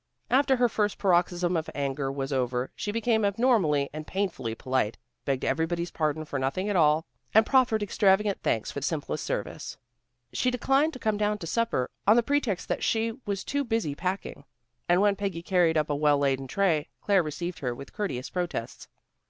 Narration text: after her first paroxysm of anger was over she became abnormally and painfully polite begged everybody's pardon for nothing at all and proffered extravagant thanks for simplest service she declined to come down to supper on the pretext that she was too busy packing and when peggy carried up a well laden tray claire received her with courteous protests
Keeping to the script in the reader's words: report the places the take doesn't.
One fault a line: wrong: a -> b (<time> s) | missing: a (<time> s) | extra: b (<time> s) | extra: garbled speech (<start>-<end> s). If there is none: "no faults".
no faults